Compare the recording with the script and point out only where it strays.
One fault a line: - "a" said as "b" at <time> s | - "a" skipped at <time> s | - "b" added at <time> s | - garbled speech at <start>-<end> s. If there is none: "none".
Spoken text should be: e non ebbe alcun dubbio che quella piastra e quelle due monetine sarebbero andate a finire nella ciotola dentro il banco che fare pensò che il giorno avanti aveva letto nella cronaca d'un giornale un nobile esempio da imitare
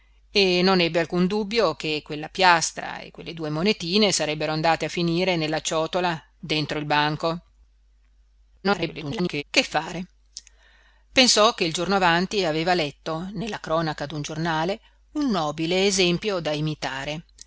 - garbled speech at 8.6-9.4 s